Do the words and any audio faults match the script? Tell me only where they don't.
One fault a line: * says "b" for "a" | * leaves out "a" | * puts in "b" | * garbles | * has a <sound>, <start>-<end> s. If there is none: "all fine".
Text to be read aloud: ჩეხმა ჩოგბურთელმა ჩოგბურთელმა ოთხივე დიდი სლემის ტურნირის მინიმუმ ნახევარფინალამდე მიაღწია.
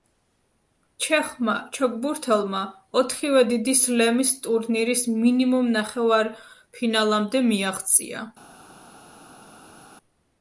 * leaves out "ჩოგბურთელმა"